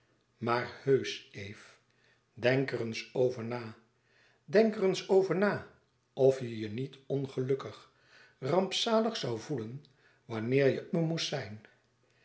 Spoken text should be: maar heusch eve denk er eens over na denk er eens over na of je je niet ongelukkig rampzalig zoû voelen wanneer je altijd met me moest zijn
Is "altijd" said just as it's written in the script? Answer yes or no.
no